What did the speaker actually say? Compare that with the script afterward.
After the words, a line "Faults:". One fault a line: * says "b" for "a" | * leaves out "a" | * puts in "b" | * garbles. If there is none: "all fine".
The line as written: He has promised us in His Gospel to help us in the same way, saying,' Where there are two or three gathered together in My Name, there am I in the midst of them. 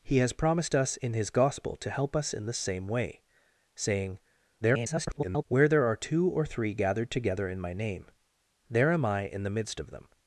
He has promised us in His Gospel to help us in the same way, saying,' [garbled] Where there are two or three gathered together in My Name, there am I in the midst of them.
Faults:
* garbles